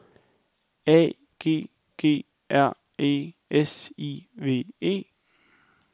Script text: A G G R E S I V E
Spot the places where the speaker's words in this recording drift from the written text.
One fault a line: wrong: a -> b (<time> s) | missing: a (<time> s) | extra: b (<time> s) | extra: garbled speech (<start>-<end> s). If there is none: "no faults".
no faults